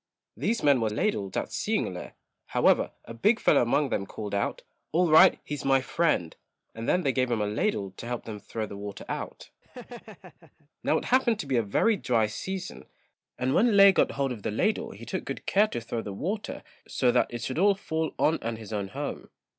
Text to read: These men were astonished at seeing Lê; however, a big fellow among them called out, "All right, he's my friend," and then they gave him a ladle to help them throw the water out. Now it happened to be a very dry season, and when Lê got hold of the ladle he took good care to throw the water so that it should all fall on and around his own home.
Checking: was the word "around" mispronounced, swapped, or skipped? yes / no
yes